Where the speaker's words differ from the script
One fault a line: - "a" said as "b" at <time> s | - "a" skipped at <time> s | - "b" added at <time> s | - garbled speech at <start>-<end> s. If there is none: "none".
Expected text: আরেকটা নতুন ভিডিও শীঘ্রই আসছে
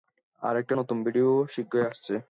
none